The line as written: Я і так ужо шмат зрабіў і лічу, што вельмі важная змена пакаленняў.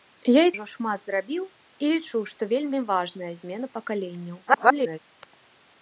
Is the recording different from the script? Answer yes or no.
yes